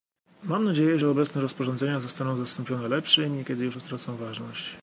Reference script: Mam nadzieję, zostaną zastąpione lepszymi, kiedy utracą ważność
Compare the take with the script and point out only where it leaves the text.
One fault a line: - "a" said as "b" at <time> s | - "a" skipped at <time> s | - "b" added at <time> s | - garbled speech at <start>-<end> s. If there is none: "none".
- "że obecne rozporządzenia" added at 1.0 s
- "już" added at 3.6 s